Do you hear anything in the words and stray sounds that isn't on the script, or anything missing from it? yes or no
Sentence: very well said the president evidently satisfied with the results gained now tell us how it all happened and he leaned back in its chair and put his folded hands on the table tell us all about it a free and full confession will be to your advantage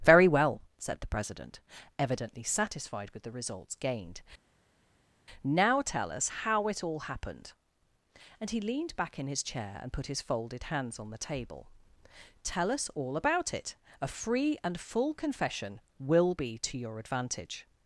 yes